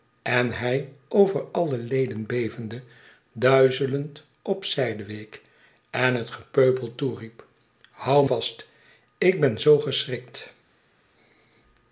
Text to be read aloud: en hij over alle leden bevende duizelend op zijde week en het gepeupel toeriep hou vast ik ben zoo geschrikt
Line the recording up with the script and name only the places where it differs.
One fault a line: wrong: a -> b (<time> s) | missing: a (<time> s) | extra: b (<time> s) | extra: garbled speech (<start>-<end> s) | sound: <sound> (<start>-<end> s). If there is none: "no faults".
no faults